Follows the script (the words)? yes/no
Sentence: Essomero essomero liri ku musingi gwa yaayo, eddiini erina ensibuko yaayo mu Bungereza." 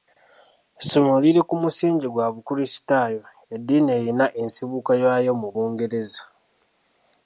no